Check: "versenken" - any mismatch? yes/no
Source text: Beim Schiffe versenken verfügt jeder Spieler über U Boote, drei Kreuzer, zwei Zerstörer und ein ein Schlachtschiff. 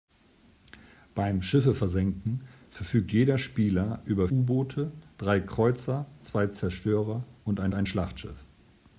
no